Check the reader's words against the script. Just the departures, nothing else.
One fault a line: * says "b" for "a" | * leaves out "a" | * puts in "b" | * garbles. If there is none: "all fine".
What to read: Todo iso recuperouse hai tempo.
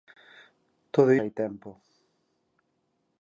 * leaves out "iso recuperouse"